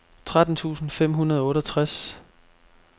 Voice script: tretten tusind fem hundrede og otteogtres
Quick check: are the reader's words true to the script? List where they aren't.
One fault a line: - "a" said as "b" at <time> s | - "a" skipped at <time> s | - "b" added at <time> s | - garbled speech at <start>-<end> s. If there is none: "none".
none